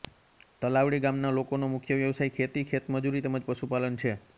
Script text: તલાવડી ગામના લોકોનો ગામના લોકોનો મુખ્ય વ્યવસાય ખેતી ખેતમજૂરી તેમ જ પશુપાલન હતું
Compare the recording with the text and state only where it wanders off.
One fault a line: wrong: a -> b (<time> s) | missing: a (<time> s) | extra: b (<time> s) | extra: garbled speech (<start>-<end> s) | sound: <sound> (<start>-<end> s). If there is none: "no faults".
missing: ગામના લોકોનો (1.7 s)
wrong: હતું -> છે (4.0 s)